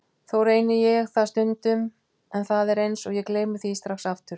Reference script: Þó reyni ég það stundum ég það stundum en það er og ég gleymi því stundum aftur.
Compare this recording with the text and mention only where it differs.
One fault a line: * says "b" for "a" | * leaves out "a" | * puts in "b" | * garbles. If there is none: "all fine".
* leaves out "ég það stundum"
* puts in "eins"
* says "strax" for "stundum"